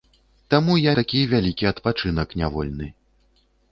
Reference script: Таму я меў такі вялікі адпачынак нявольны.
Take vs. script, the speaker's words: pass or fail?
fail